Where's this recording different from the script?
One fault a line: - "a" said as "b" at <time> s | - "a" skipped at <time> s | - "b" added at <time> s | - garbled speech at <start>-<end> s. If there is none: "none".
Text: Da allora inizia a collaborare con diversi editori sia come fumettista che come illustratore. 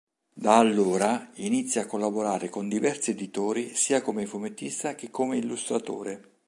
none